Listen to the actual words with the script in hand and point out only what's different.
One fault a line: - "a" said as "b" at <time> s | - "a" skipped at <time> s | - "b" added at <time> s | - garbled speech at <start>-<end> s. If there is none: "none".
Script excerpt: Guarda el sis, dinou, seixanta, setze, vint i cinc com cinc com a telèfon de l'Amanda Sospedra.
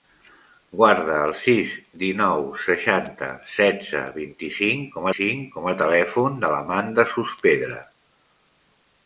none